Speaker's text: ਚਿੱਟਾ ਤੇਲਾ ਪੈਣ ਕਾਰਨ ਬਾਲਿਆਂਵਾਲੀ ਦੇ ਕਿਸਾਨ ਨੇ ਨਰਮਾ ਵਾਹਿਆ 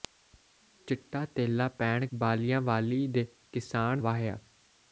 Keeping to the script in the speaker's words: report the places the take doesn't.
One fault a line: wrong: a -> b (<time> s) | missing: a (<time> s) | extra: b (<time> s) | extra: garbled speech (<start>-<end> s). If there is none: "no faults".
missing: ਕਾਰਨ (2.0 s)
missing: ਨੇ ਨਰਮਾ (4.0 s)